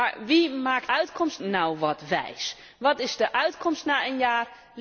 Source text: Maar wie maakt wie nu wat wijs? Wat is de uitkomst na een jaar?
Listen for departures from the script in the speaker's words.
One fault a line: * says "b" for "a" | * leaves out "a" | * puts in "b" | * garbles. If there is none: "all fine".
* says "uitkomst" for "wie"